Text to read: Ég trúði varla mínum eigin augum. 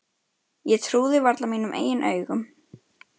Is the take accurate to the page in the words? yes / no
yes